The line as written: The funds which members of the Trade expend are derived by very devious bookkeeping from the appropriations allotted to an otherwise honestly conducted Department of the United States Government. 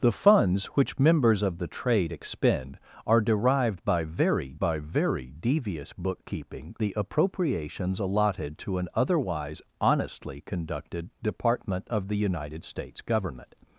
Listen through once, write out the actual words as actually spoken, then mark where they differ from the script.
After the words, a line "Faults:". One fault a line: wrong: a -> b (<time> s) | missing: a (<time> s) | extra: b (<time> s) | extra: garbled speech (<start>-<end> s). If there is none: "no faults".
The funds which members of the Trade expend are derived by very by very devious bookkeeping the appropriations allotted to an otherwise honestly conducted Department of the United States Government.
Faults:
extra: by very (4.6 s)
missing: from (6.7 s)